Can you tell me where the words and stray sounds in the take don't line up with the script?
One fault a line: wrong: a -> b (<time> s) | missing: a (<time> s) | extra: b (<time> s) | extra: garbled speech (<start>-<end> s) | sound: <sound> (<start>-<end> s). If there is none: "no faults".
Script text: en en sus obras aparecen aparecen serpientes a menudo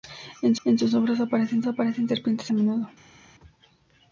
no faults